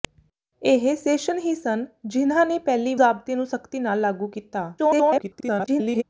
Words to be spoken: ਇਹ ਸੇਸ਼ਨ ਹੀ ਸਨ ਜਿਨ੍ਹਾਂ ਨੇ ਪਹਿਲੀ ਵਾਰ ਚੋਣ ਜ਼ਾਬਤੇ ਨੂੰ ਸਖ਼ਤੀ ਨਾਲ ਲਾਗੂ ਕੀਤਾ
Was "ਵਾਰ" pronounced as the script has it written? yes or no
no